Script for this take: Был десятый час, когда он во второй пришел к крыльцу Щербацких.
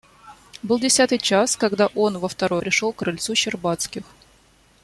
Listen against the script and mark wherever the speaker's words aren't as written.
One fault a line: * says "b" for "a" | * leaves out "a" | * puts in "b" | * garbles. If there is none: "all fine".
all fine